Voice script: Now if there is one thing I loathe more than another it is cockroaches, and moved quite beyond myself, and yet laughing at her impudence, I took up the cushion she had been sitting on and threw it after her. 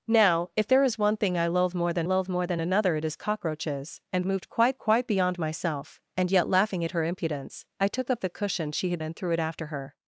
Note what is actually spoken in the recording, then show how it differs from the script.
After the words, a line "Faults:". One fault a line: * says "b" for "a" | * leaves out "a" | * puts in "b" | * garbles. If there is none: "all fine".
Now if there is one thing I loathe more than loathe more than another it is cockroaches, and moved quite quite beyond myself, and yet laughing at her impudence, I took up the cushion she had and threw it after her.
Faults:
* puts in "loathe more than"
* puts in "quite"
* leaves out "been sitting on"